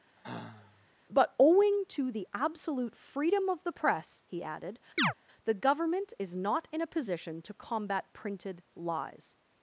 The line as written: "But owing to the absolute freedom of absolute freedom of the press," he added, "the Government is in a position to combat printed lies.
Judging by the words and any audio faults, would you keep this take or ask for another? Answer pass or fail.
fail